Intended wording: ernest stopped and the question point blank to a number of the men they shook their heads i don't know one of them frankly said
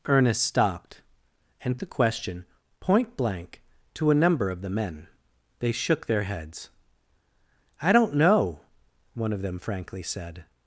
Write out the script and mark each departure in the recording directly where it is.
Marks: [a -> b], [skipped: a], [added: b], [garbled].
ernest stopped and the question point blank to a number of the men they shook their heads i don't know one of them frankly said